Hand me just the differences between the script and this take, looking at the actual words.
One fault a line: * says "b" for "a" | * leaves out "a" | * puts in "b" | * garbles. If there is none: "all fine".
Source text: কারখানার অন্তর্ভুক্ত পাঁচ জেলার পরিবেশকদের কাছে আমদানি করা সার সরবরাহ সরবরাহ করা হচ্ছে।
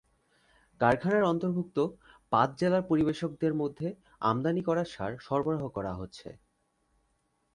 * says "মধ্যে" for "কাছে"
* leaves out "সরবরাহ"